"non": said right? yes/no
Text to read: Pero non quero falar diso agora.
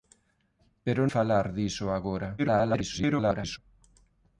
no